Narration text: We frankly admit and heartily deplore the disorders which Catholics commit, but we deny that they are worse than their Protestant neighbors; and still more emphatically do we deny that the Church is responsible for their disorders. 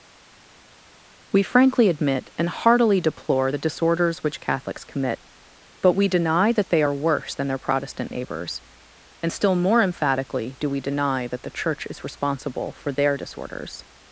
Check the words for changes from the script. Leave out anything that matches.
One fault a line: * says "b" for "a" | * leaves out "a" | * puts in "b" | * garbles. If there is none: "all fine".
all fine